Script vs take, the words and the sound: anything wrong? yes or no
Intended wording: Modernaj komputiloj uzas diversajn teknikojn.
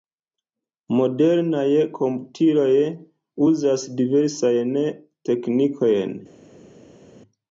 no